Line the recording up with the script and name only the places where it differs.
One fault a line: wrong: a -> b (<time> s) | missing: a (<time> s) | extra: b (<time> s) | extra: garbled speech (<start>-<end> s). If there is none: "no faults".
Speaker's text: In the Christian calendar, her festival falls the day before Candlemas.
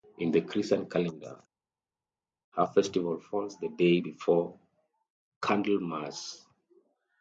no faults